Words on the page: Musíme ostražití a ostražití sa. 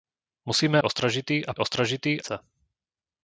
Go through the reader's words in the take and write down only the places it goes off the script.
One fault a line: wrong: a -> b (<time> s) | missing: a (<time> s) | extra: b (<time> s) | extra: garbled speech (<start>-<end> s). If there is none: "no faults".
no faults